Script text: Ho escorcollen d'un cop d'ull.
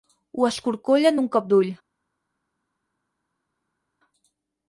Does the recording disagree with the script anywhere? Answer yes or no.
no